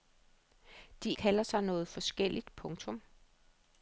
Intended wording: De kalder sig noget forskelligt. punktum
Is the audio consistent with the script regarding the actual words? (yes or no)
yes